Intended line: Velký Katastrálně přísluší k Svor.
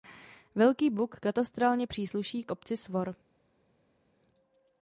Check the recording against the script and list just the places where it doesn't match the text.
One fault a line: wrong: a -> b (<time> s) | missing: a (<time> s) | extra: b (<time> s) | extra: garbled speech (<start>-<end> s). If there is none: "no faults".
extra: Buk (0.9 s)
extra: obci (2.5 s)